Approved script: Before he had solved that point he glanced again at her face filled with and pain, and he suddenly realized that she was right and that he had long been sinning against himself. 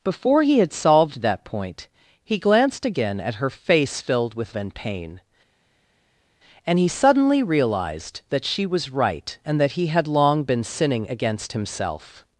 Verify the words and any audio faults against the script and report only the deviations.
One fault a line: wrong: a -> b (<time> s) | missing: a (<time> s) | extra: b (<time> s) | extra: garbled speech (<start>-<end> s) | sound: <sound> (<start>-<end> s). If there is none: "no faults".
no faults